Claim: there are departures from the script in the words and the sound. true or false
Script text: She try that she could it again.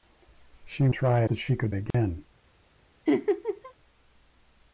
true